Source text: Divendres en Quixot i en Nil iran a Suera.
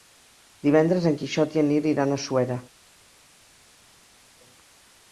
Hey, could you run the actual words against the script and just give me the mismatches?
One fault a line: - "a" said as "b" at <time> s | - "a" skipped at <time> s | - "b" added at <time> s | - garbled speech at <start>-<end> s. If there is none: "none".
none